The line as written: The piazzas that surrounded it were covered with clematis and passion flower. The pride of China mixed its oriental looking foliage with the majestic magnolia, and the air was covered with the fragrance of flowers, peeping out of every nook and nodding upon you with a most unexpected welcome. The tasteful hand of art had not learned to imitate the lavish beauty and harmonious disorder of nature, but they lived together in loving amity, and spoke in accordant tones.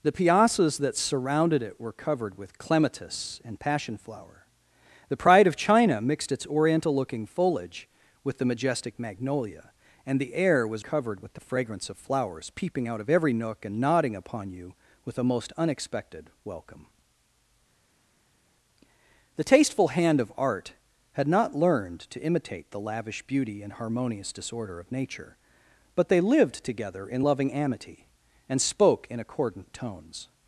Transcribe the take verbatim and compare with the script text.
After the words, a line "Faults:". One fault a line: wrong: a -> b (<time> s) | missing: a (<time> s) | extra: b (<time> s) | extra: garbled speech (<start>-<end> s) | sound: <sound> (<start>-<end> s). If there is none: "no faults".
The piazzas that surrounded it were covered with clematis and passion flower. The pride of China mixed its oriental looking foliage with the majestic magnolia, and the air was covered with the fragrance of flowers, peeping out of every nook and nodding upon you with a most unexpected welcome. The tasteful hand of art had not learned to imitate the lavish beauty and harmonious disorder of nature, but they lived together in loving amity, and spoke in accordant tones.
Faults:
no faults